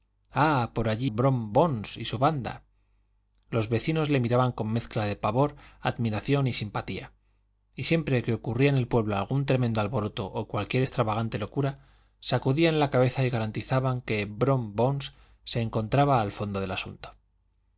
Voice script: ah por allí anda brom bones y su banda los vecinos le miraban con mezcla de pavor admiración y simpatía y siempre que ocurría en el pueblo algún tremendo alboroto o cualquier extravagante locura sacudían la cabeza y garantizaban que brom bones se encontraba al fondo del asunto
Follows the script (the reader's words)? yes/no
no